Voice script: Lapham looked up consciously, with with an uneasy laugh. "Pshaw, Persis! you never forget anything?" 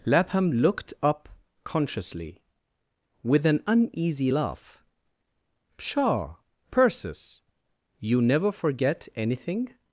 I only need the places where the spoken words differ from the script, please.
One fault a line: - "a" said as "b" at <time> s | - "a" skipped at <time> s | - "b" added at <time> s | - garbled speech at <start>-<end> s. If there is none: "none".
- "with" skipped at 3.5 s